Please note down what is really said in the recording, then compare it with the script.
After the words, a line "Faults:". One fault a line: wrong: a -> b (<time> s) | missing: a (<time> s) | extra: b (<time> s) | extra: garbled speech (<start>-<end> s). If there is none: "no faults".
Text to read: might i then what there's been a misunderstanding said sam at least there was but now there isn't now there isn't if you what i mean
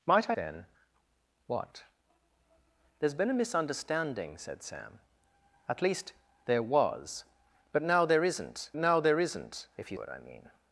might i then what there's been a misunderstanding said sam at least there was but now there isn't now there isn't if you what i mean
Faults:
no faults